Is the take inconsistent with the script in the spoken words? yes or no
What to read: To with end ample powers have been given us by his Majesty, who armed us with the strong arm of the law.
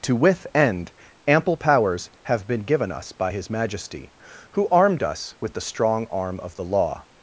no